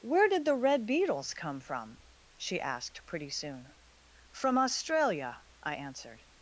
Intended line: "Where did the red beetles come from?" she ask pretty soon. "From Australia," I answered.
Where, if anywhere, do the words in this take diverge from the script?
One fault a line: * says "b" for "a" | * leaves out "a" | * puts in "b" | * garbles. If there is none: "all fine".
* says "asked" for "ask"